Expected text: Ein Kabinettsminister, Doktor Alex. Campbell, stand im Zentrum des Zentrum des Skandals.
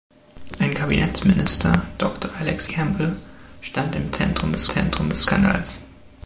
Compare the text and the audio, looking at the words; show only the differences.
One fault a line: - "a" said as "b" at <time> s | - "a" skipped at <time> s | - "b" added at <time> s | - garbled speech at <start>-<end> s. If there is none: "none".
none